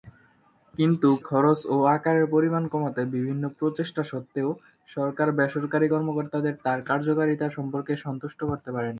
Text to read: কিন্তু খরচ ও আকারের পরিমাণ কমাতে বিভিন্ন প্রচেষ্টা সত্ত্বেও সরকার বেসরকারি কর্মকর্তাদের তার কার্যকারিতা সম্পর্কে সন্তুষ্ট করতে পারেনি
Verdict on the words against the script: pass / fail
pass